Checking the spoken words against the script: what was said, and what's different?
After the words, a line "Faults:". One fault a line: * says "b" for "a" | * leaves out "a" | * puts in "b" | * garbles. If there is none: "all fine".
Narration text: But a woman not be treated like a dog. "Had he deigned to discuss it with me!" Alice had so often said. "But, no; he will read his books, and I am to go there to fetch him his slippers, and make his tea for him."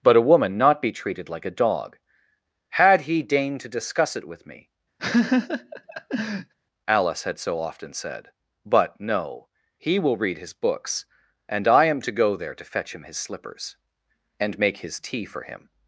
But a woman not be treated like a dog. "Had he deigned to discuss it with me!" Alice had so often said. "But, no; he will read his books, and I am to go there to fetch him his slippers, and make his tea for him."
Faults:
all fine